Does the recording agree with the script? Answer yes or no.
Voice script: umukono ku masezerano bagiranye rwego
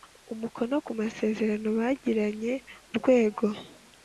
yes